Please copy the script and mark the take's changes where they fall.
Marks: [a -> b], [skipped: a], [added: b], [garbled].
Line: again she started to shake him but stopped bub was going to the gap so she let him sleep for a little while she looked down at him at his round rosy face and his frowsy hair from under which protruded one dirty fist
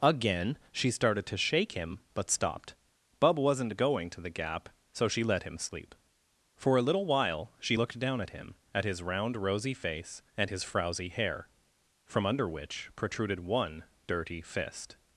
again she started to shake him but stopped bub [was -> wasn't] going to the gap so she let him sleep for a little while she looked down at him at his round rosy face and his frowsy hair from under which protruded one dirty fist